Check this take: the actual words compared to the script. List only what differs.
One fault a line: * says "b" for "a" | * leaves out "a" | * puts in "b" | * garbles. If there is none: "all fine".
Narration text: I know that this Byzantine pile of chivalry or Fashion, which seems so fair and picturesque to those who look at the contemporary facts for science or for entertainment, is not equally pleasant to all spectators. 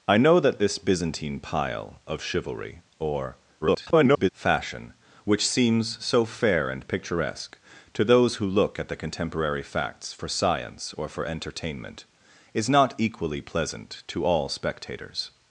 * garbles